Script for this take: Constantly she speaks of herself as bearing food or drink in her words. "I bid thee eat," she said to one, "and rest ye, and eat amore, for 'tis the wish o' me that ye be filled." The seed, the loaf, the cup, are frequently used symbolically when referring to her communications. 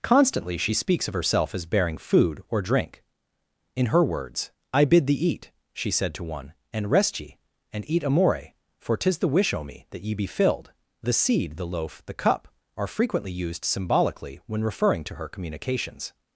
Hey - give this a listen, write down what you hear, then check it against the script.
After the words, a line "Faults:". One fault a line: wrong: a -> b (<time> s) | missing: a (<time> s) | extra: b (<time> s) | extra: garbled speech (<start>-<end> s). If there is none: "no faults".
Constantly she speaks of herself as bearing food or drink in her words. "I bid thee eat," she said to one, "and rest ye, and eat amore, for 'tis the wish o' me that ye be filled." The seed, the loaf, the cup, are frequently used symbolically when referring to her communications.
Faults:
no faults